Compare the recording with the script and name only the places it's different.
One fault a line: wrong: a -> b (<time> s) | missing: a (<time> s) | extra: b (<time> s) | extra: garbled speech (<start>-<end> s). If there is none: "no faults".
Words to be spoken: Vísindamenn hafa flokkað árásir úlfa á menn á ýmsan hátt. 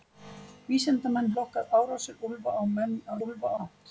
missing: hafa (1.3 s)
wrong: ýmsan -> úlfa (3.3 s)